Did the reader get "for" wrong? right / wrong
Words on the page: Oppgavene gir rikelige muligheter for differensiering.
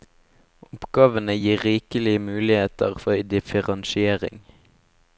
right